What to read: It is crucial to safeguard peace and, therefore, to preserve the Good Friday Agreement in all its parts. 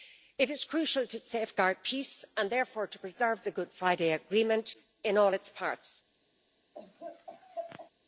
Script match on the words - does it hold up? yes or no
yes